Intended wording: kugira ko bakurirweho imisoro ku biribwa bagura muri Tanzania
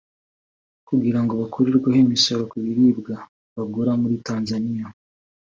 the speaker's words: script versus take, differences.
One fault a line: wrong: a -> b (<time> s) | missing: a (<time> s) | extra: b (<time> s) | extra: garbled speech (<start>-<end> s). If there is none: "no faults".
wrong: ko -> ngo (1.2 s)